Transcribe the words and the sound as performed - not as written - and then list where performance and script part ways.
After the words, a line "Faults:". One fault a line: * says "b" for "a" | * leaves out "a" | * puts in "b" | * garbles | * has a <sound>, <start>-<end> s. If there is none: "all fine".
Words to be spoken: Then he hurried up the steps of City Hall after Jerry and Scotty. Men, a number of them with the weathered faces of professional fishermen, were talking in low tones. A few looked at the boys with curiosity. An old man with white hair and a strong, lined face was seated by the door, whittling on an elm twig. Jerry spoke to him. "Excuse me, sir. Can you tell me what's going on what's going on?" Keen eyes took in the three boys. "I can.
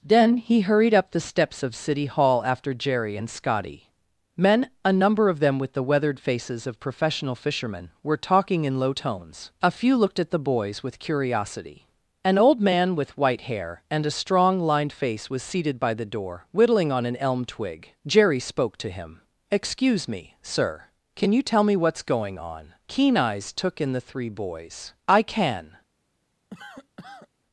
Then he hurried up the steps of City Hall after Jerry and Scotty. Men, a number of them with the weathered faces of professional fishermen, were talking in low tones. A few looked at the boys with curiosity. An old man with white hair and a strong, lined face was seated by the door, whittling on an elm twig. Jerry spoke to him. "Excuse me, sir. Can you tell me what's going on?" Keen eyes took in the three boys. "I can.
Faults:
* leaves out "what's going on"
* has a cough, 26.5-27.3 s